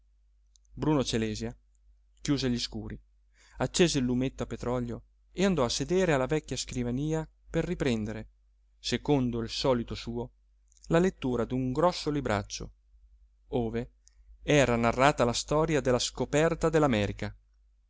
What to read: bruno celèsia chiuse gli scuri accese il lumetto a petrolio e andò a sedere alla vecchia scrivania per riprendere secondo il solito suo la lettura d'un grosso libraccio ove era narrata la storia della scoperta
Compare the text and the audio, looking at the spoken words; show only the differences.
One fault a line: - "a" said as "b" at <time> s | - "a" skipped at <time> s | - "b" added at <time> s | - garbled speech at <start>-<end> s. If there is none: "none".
none